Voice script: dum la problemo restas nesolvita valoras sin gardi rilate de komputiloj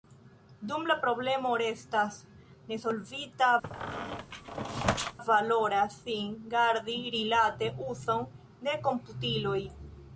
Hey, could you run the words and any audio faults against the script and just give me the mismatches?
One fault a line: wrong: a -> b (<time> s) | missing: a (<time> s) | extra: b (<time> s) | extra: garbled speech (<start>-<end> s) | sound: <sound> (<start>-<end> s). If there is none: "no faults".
sound: squeak (3.6-5.2 s)
extra: uzon (7.9 s)